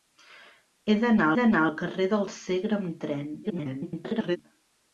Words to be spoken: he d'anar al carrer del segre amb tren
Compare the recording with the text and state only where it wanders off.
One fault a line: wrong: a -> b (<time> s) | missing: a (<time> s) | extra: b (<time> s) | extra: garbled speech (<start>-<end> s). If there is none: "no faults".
extra: d'anar (1.4 s)
extra: garbled speech (3.4-4.4 s)